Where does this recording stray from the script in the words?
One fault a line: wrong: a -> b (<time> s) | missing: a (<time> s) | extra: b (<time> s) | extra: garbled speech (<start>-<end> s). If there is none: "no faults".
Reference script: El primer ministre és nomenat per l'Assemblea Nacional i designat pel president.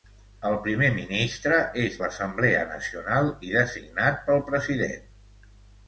missing: nomenat per (2.0 s)